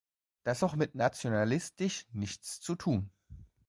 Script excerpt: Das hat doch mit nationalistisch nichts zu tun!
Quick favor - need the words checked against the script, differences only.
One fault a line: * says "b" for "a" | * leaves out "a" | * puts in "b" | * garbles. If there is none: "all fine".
* leaves out "hat"